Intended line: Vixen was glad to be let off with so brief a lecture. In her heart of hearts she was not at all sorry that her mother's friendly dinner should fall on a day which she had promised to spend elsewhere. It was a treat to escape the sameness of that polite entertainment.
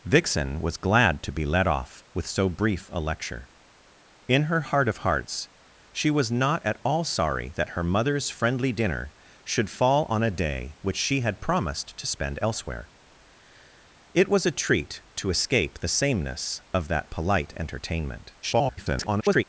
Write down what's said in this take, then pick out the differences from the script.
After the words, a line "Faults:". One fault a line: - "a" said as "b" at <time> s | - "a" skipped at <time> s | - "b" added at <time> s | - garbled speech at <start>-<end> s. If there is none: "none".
Vixen was glad to be let off with so brief a lecture. In her heart of hearts she was not at all sorry that her mother's friendly dinner should fall on a day which she had promised to spend elsewhere. It was a treat to escape the sameness of that polite entertainment. [garbled]
Faults:
- garbled speech at 18.4-19.4 s